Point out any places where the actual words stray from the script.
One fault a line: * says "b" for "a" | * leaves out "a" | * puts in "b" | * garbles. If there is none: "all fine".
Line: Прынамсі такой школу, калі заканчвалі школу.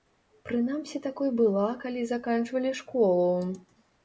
* says "была" for "школу"